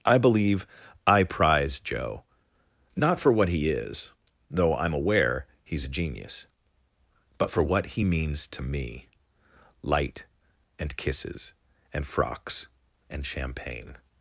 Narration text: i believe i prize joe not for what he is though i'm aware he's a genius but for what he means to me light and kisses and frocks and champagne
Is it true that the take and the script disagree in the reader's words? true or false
false